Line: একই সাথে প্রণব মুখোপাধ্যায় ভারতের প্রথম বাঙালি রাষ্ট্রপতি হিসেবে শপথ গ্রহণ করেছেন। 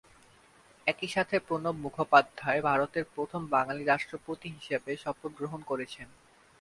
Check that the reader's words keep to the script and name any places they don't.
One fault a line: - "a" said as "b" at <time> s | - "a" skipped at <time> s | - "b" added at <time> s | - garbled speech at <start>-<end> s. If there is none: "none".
none